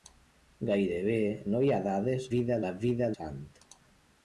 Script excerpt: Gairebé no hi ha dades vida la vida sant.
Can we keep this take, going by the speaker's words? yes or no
yes